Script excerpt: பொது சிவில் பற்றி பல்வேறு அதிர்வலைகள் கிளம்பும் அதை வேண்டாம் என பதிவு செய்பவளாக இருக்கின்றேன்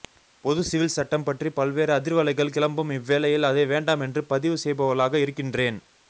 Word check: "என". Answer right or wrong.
wrong